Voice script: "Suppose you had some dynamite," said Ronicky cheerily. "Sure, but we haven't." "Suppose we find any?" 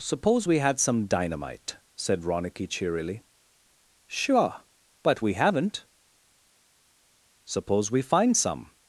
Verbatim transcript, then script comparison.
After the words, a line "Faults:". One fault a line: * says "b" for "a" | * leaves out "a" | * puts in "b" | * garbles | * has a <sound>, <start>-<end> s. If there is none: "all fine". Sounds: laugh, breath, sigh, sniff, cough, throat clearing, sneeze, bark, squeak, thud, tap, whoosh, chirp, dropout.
"Suppose we had some dynamite," said Ronicky cheerily. "Sure, but we haven't." "Suppose we find some?"
Faults:
* says "we" for "you"
* says "some" for "any"